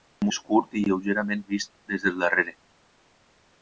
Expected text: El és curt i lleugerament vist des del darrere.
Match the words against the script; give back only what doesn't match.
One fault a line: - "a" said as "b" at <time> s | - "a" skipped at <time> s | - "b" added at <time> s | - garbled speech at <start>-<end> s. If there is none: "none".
none